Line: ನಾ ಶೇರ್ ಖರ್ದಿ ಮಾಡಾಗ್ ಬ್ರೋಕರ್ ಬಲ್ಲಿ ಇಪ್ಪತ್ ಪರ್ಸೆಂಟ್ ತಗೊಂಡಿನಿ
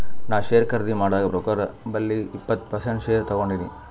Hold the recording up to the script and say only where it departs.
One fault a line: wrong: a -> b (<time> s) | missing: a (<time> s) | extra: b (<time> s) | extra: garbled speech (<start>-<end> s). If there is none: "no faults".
extra: ಶೇರ್ (3.0 s)